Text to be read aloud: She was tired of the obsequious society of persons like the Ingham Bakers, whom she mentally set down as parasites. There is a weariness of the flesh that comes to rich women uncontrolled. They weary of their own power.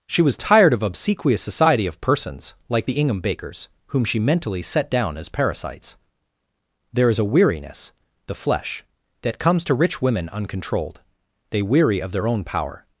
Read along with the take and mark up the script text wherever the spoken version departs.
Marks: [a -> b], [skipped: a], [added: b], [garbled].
She was tired of [skipped: the] obsequious society of persons like the Ingham Bakers, whom she mentally set down as parasites. There is a weariness [skipped: of] the flesh that comes to rich women uncontrolled. They weary of their own power.